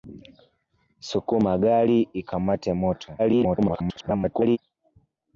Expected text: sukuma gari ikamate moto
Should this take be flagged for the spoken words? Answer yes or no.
yes